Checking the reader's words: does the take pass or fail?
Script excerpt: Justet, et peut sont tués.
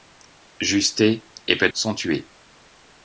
pass